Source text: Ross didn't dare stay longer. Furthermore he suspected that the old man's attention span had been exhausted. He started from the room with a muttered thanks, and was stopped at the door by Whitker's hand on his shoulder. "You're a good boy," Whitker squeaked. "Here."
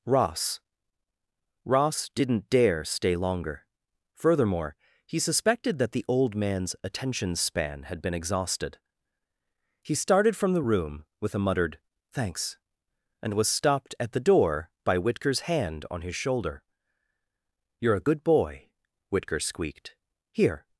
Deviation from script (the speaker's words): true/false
true